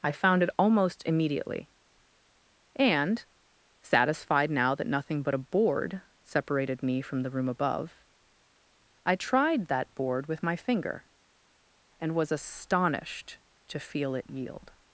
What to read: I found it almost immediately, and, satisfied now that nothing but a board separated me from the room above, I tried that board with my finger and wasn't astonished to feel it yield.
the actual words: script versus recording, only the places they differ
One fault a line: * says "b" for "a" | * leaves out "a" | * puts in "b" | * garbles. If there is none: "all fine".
* says "was" for "wasn't"